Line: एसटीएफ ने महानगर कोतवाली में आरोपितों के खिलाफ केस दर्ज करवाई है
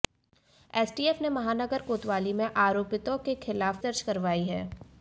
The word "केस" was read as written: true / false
false